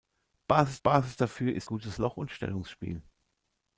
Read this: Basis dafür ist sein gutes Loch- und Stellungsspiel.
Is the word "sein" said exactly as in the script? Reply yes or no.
no